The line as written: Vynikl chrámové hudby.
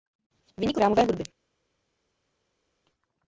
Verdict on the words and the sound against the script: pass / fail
pass